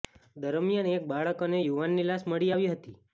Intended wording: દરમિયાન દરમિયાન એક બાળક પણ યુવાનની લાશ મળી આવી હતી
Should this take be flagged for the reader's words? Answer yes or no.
yes